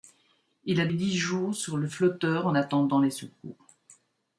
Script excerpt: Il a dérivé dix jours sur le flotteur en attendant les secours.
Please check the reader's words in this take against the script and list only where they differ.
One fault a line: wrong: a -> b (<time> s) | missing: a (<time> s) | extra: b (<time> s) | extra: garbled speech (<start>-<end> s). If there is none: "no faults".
missing: dérivé (0.9 s)